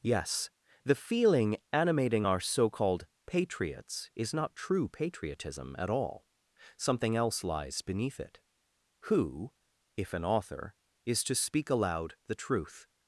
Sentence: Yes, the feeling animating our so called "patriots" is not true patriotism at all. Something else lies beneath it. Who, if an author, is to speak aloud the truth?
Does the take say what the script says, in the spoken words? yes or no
yes